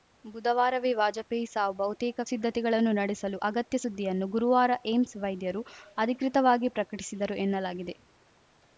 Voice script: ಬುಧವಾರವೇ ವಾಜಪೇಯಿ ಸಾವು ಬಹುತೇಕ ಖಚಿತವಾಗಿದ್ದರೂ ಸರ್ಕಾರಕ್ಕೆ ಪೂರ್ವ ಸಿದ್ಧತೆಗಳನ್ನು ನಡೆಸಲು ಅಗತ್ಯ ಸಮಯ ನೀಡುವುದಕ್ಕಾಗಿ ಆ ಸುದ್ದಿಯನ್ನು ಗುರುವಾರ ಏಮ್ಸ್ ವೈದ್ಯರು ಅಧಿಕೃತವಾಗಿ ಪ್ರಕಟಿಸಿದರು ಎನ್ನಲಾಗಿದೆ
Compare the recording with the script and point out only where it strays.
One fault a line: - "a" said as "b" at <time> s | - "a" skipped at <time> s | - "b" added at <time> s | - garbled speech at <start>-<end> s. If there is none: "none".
- "ಖಚಿತವಾಗಿದ್ದರೂ ಸರ್ಕಾರಕ್ಕೆ ಪೂರ್ವ" skipped at 2.2 s
- "ಸಮಯ ನೀಡುವುದಕ್ಕಾಗಿ ಆ" skipped at 3.8 s